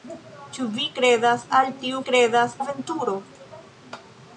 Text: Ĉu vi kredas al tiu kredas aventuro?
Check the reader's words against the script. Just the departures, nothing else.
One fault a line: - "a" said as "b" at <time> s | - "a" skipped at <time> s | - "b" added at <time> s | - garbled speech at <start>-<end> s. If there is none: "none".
none